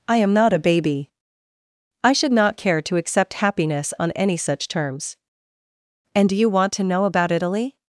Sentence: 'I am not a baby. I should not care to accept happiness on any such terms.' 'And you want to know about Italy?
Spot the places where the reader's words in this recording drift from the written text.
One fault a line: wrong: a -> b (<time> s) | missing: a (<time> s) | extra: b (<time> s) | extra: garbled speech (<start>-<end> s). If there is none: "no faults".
extra: do (6.3 s)